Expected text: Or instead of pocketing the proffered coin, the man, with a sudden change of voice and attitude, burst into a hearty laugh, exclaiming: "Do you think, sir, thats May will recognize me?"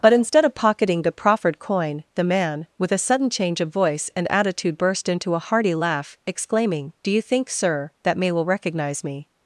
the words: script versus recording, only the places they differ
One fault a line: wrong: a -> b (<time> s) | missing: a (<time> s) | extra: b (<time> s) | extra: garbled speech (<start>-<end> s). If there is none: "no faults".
wrong: Or -> But (0.0 s)
wrong: thats -> that (8.0 s)